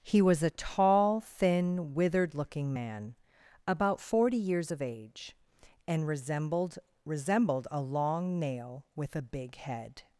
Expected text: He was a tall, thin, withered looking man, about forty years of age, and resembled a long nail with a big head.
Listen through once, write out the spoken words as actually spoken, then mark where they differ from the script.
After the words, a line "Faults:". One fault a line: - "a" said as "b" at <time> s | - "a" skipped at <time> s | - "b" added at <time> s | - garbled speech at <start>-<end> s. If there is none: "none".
He was a tall, thin, withered looking man, about forty years of age, and resembled resembled a long nail with a big head.
Faults:
- "resembled" added at 7.0 s